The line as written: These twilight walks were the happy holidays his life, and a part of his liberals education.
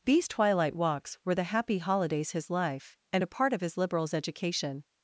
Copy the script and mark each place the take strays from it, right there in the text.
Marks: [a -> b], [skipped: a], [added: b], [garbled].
These twilight walks were the happy holidays his life, and a part of his liberals education.